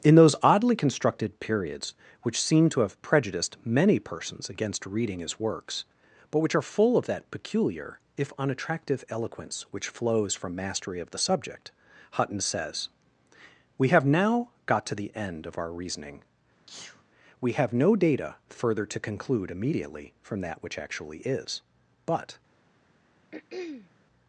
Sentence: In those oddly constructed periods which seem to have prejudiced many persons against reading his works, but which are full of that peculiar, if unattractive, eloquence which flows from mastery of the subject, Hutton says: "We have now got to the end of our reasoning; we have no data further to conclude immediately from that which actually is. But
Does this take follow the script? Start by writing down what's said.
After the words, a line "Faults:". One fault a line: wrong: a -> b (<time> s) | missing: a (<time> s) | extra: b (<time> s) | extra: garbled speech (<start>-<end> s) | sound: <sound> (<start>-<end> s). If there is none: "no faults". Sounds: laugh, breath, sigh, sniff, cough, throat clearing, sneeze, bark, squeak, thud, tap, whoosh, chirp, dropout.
In those oddly constructed periods which seem to have prejudiced many persons against reading his works, but which are full of that peculiar, if unattractive, eloquence which flows from mastery of the subject, Hutton says: "We have now got to the end of our reasoning; we have no data further to conclude immediately from that which actually is. But
Faults:
sound: sneeze (16.7-17.0 s)
sound: throat clearing (23.3-23.9 s)